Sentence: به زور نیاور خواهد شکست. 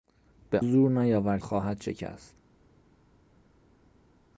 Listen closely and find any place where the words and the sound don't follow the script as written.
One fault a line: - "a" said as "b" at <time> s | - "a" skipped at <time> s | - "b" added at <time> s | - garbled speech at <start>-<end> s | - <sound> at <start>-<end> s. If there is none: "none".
none